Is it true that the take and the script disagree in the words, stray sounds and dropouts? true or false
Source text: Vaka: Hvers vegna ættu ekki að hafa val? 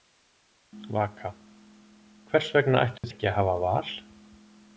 true